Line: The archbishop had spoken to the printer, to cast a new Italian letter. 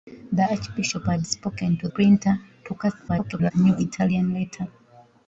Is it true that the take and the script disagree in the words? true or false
true